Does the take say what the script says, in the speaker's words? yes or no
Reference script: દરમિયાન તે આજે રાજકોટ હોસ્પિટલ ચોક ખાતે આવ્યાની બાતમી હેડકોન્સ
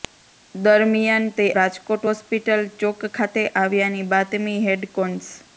no